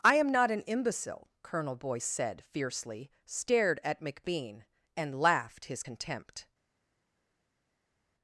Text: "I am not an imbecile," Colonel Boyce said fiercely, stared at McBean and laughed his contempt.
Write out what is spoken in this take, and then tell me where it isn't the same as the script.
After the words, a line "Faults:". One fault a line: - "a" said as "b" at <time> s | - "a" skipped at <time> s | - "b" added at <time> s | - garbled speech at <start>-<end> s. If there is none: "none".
"I am not an imbecile," Colonel Boyce said fiercely, stared at McBean and laughed his contempt.
Faults:
none